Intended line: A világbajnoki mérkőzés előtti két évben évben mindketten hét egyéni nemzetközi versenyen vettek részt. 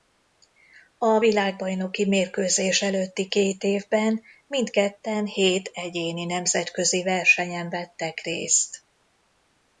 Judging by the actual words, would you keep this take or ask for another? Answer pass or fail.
fail